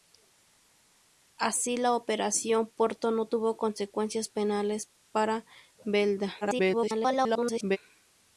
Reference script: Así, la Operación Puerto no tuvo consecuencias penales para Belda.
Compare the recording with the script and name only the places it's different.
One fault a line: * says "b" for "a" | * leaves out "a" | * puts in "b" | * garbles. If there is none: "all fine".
* garbles